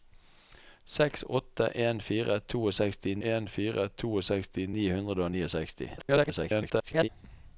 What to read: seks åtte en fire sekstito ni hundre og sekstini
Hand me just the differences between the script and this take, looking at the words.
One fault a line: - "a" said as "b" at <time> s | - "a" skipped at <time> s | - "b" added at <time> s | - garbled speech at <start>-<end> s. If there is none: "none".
- "en fire sekstito" added at 3.3 s
- garbled speech at 6.0-7.1 s